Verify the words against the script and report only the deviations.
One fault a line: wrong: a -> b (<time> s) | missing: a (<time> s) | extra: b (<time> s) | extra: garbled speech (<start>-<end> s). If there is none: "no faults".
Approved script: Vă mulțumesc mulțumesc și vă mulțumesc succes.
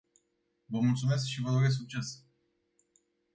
missing: mulțumesc (1.2 s)
wrong: mulțumesc -> doresc (1.5 s)